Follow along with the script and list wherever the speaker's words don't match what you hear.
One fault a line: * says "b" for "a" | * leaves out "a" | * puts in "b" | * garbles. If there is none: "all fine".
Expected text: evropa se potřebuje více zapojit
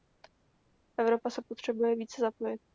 all fine